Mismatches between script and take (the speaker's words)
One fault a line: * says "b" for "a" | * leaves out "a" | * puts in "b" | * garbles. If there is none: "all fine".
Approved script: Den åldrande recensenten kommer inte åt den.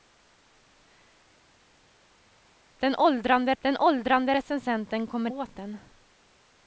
* puts in "den åldrande"
* leaves out "inte"